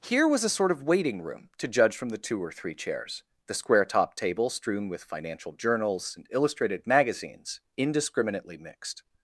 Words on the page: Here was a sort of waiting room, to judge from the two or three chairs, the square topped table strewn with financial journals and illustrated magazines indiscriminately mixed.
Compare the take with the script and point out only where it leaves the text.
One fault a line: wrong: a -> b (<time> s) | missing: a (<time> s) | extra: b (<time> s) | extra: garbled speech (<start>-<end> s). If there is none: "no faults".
no faults